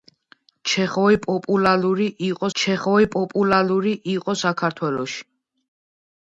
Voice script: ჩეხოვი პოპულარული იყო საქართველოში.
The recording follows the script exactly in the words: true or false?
false